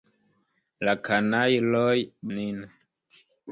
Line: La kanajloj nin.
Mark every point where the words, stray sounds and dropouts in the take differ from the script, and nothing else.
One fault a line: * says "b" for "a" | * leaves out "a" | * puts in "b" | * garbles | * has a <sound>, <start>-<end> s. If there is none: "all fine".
all fine